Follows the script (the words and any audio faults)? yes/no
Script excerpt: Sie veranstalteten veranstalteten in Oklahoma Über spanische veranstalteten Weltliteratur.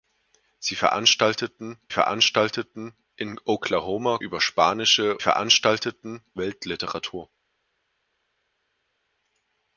yes